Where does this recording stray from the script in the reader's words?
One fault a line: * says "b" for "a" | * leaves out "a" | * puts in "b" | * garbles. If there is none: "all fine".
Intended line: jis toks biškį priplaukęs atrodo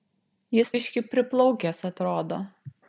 * leaves out "toks"